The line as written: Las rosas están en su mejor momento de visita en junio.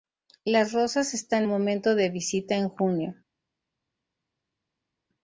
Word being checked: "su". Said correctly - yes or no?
no